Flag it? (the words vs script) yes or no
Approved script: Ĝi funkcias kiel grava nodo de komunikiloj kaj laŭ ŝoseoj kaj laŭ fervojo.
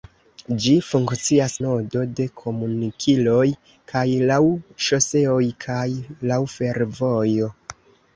yes